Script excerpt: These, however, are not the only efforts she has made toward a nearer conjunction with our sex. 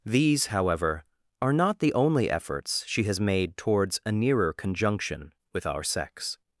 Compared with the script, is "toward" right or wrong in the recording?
wrong